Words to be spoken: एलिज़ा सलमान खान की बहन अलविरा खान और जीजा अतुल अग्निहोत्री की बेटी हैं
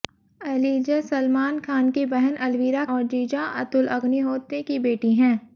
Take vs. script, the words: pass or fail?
fail